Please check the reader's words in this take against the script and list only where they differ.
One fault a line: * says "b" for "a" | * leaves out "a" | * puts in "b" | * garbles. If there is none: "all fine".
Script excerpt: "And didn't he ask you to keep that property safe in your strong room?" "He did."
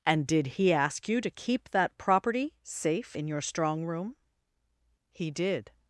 * says "did" for "didn't"